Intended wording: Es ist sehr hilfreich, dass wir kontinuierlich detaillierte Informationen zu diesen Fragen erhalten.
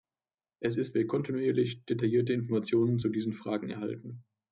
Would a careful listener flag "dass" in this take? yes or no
yes